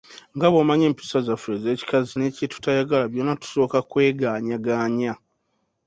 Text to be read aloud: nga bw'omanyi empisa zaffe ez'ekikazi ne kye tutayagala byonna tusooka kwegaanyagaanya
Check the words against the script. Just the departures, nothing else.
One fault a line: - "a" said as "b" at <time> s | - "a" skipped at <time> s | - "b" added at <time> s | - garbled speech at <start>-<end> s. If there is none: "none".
none